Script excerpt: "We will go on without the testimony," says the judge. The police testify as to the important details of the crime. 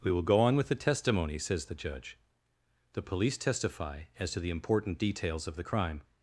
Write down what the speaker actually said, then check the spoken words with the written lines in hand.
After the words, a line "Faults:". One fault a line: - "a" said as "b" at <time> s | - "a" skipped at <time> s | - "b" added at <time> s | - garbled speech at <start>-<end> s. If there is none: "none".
"We will go on with the testimony," says the judge. The police testify as to the important details of the crime.
Faults:
- "without" said as "with" at 0.6 s